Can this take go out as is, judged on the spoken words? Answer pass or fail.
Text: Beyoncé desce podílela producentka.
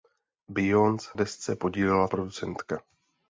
pass